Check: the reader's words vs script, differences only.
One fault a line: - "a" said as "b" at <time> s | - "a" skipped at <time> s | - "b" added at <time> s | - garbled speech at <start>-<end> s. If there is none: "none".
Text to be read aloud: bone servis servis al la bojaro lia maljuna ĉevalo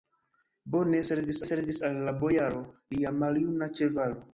none